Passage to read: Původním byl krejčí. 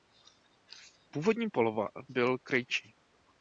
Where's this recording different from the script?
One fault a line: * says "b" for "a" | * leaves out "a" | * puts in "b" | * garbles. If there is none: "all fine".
all fine